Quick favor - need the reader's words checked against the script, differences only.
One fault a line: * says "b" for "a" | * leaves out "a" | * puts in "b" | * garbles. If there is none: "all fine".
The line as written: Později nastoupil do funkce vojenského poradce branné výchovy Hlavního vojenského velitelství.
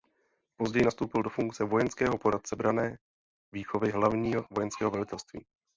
all fine